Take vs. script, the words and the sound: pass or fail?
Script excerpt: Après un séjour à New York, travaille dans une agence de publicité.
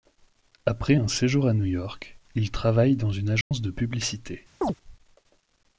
fail